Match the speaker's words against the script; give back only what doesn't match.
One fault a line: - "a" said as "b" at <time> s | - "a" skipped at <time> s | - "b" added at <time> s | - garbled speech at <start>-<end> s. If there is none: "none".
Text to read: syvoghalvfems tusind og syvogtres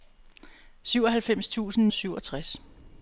none